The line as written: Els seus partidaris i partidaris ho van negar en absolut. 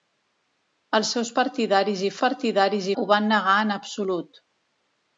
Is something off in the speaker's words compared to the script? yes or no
no